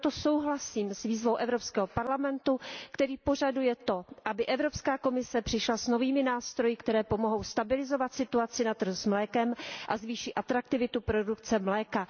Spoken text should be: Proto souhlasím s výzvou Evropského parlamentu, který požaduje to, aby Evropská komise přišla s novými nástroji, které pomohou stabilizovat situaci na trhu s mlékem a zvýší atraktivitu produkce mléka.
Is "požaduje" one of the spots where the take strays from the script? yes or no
no